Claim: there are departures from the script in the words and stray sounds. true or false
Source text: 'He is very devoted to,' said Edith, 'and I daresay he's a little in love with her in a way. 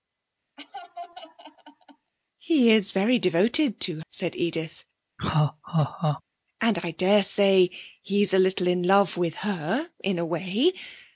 true